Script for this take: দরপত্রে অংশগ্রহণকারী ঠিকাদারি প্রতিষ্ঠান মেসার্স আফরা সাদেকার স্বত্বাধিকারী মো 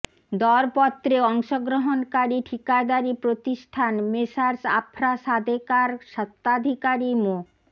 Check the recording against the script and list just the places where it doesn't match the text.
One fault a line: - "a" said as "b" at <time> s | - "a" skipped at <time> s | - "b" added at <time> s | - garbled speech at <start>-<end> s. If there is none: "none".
none